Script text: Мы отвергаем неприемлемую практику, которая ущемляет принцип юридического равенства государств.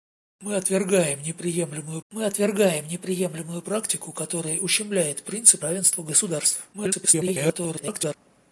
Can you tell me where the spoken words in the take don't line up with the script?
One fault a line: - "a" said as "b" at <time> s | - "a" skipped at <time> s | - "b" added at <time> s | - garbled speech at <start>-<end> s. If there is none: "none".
- "мы отвергаем неприемлемую" added at 2.1 s
- "юридического" skipped at 5.6 s
- garbled speech at 6.7-8.1 s